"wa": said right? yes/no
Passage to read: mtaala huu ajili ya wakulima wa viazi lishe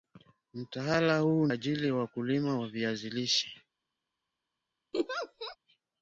yes